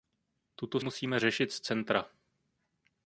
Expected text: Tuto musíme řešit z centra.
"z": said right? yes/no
yes